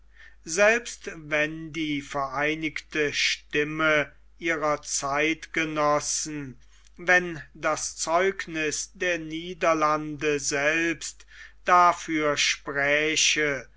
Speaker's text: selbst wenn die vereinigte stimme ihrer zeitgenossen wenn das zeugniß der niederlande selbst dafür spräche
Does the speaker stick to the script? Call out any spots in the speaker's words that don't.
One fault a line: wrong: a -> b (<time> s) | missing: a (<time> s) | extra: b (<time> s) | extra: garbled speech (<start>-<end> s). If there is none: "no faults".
no faults